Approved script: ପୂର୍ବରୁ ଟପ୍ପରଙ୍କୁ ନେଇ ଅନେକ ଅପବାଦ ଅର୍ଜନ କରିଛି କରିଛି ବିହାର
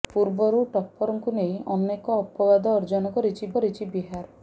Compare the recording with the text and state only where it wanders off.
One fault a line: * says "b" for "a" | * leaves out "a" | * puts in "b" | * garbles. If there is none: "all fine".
all fine